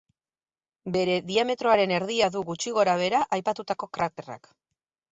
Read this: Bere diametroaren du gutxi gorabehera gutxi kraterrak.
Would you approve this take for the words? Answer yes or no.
no